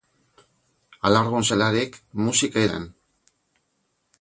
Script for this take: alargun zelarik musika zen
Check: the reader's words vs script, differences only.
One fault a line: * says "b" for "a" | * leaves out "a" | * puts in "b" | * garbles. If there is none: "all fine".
all fine